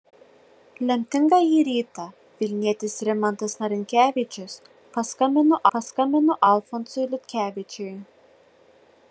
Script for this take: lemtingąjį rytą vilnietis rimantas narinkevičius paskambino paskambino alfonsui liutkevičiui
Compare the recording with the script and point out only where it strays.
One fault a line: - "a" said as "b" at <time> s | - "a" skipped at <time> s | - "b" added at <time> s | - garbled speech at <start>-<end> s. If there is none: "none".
none